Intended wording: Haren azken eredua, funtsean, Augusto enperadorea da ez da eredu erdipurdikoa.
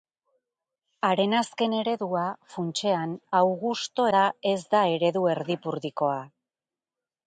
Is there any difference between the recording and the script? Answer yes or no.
yes